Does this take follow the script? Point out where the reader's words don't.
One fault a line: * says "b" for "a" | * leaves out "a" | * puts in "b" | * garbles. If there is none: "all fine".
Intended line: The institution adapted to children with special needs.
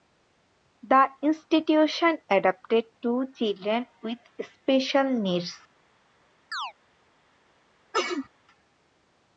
all fine